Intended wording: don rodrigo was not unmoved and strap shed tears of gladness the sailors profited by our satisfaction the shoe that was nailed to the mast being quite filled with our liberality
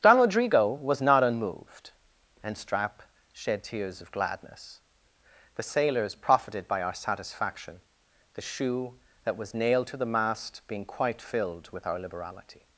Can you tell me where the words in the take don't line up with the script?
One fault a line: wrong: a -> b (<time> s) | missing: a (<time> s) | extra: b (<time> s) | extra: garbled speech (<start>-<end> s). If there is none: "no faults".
no faults